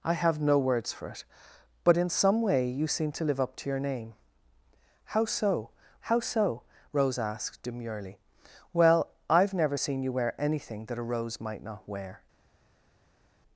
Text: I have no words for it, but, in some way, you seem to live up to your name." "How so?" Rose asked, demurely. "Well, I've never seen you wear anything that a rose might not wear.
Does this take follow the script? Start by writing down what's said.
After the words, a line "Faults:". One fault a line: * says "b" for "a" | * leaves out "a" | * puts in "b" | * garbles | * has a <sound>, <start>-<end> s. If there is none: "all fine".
I have no words for it, but, in some way, you seem to live up to your name." "How so how so?" Rose asked, demurely. "Well, I've never seen you wear anything that a rose might not wear.
Faults:
* puts in "how so"